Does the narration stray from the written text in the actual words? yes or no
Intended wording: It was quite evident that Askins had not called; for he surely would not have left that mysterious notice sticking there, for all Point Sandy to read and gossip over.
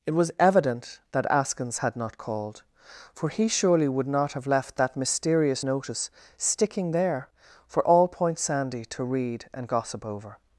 yes